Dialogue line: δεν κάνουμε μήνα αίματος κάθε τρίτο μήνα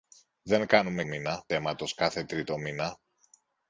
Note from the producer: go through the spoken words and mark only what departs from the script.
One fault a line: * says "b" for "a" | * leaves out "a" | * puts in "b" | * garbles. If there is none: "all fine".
all fine